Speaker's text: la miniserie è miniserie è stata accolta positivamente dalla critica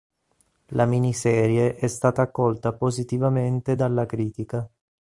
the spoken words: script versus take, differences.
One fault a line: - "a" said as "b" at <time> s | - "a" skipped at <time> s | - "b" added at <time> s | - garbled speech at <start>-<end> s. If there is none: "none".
- "miniserie è" skipped at 1.9 s